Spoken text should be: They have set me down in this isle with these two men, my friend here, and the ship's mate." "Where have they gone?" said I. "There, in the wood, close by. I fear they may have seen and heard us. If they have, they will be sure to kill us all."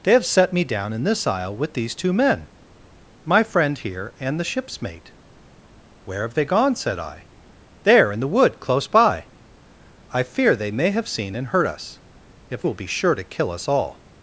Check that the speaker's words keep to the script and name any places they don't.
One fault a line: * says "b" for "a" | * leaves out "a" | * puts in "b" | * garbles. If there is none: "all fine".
* leaves out "they have they"